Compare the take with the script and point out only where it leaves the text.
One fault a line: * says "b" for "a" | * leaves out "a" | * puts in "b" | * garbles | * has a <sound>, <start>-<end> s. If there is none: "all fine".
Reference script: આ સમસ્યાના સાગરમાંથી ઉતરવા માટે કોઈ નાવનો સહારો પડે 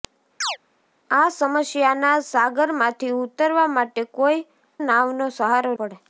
* has a chirp, 0.4-0.6 s